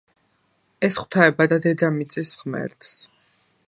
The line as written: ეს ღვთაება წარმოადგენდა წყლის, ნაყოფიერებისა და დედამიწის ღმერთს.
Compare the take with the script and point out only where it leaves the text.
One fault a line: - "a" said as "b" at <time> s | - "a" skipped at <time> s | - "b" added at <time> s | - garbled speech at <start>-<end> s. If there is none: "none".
- "წარმოადგენდა წყლის ნაყოფიერებისა" skipped at 1.5 s